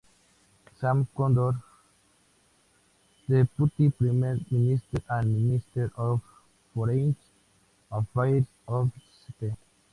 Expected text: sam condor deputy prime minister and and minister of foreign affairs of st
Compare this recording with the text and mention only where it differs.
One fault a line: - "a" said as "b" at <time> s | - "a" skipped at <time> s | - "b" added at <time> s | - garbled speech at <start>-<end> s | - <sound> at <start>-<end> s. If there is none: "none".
- "and" skipped at 5.5 s